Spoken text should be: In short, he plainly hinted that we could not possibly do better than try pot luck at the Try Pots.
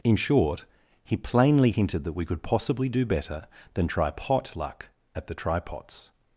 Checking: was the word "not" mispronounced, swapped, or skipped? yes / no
yes